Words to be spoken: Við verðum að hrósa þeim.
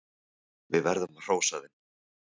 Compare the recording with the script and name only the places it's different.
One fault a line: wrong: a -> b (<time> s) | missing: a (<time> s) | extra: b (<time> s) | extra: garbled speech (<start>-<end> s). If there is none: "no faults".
no faults